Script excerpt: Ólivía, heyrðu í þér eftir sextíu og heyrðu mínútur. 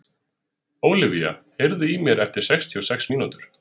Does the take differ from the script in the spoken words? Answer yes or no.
yes